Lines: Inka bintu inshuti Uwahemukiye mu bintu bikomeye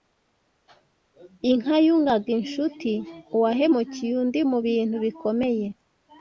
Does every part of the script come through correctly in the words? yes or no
no